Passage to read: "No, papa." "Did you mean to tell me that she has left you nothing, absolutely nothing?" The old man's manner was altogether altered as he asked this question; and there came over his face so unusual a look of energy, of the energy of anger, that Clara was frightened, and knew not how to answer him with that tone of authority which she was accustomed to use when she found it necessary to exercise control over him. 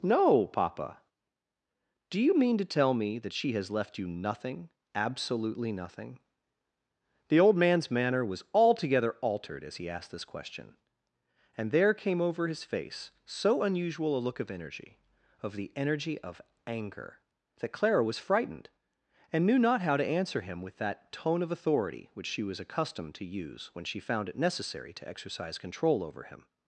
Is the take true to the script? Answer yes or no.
no